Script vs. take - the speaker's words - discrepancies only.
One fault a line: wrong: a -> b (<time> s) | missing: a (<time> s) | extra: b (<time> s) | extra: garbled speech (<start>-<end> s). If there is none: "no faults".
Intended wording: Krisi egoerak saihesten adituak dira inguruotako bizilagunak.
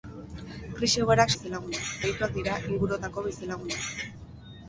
wrong: saihesten -> bizilagunak (1.3 s)